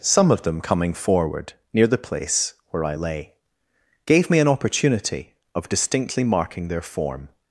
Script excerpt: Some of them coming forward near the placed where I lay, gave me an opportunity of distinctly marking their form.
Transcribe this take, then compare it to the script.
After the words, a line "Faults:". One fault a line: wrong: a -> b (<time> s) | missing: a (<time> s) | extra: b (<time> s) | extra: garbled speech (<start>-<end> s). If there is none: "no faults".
Some of them coming forward near the place where I lay, gave me an opportunity of distinctly marking their form.
Faults:
wrong: placed -> place (2.0 s)